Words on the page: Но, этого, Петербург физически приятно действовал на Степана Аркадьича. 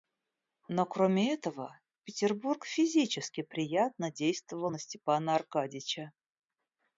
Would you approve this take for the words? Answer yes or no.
no